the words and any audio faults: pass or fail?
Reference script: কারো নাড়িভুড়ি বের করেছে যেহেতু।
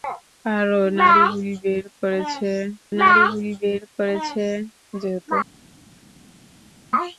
fail